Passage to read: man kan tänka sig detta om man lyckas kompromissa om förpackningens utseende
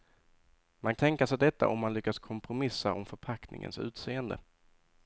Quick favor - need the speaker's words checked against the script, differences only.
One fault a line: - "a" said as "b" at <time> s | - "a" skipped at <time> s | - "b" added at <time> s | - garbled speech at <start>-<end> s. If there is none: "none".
- "kan" skipped at 0.9 s